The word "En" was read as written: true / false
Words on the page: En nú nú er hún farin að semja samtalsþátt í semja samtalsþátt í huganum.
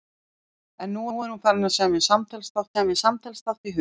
true